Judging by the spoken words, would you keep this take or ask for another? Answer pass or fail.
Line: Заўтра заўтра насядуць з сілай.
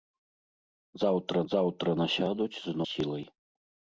pass